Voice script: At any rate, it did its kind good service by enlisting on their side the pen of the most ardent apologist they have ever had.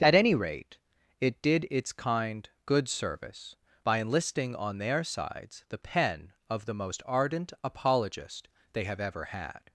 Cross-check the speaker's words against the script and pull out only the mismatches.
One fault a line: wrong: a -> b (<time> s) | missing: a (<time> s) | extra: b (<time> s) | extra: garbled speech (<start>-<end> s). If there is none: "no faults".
wrong: side -> sides (5.0 s)